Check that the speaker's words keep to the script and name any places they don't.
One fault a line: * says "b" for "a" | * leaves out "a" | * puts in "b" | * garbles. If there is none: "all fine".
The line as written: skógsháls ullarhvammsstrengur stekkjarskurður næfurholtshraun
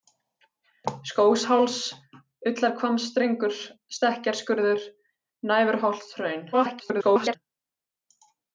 * garbles